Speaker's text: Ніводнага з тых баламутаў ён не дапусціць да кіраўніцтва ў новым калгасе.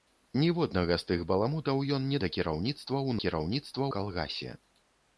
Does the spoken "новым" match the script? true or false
false